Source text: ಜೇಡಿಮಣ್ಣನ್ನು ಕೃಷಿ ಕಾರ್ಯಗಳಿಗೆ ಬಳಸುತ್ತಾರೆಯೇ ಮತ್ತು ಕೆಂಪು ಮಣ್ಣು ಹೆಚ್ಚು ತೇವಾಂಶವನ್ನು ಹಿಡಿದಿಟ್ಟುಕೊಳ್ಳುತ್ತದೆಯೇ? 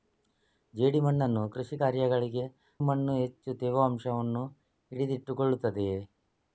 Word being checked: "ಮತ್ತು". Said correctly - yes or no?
no